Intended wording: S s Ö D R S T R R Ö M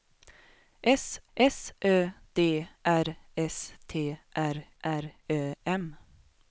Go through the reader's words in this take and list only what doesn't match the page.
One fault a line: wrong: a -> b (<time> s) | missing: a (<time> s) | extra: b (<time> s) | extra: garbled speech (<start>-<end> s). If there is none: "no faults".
no faults